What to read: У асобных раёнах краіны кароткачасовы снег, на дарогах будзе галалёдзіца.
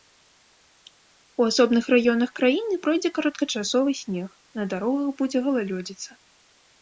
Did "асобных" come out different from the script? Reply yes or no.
no